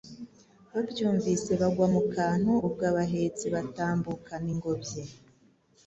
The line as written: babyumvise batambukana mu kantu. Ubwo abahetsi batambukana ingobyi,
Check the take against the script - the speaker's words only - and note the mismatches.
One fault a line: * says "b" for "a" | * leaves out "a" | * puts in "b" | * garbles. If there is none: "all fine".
* says "bagwa" for "batambukana"